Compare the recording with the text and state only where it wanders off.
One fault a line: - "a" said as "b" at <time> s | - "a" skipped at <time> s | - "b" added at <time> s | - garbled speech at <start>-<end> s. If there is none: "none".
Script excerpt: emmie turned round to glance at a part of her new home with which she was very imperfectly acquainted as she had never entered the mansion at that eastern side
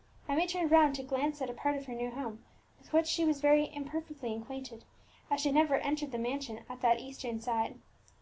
none